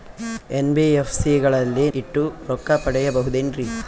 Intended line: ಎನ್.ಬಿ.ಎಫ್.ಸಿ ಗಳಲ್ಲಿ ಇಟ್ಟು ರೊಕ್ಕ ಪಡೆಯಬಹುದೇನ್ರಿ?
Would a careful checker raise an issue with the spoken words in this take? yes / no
no